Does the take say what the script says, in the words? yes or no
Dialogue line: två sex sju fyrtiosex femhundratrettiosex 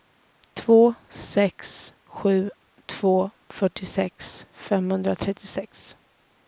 no